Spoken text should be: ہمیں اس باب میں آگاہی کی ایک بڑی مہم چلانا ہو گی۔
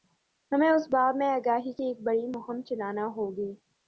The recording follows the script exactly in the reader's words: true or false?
true